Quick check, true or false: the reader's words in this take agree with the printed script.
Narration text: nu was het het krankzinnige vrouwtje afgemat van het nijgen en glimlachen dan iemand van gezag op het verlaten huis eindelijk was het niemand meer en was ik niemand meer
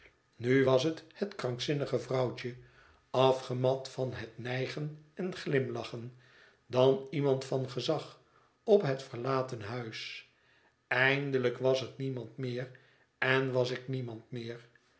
true